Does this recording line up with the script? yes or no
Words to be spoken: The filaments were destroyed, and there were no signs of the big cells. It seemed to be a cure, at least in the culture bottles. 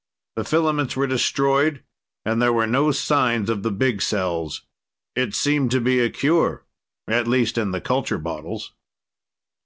yes